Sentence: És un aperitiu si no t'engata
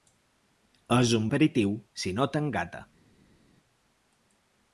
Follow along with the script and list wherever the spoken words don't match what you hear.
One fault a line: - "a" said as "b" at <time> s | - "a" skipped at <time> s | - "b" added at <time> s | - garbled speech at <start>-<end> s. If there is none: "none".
none